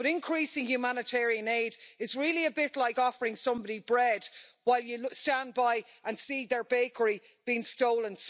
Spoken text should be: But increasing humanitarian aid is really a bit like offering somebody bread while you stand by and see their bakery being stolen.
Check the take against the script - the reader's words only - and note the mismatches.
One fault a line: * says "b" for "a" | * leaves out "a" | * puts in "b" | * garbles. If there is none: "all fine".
all fine